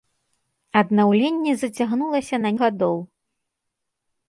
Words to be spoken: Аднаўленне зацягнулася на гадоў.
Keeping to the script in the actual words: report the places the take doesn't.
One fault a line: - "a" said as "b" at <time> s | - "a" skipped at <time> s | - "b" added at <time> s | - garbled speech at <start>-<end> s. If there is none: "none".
none